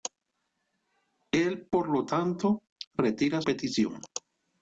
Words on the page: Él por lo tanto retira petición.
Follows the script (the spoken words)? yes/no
yes